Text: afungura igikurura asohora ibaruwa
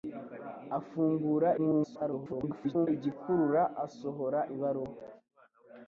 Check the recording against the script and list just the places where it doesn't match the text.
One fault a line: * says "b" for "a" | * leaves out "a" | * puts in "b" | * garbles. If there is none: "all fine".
* garbles